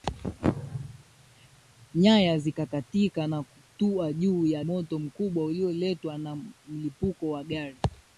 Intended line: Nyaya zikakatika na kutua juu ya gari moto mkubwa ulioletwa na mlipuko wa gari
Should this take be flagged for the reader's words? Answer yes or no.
yes